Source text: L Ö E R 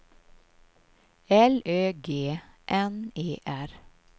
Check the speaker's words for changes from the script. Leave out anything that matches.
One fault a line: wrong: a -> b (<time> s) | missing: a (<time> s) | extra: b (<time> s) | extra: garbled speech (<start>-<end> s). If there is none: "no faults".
extra: G N (2.1 s)